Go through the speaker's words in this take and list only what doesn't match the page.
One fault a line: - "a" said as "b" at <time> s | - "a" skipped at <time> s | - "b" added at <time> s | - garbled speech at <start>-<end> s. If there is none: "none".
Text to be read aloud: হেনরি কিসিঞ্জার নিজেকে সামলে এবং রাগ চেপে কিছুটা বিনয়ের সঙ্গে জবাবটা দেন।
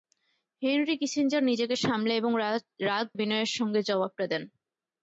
- "চেপে কিছুটা" skipped at 3.1 s